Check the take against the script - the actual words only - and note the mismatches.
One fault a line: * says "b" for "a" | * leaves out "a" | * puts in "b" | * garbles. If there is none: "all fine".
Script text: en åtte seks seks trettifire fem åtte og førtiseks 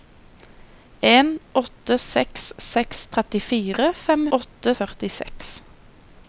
all fine